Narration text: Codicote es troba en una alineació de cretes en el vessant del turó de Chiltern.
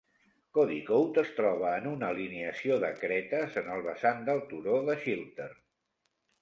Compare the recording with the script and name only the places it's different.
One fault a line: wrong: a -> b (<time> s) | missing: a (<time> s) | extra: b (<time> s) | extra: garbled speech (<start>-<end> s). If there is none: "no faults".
no faults